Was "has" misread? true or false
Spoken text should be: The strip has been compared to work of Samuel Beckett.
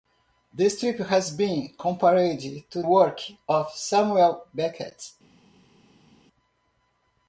false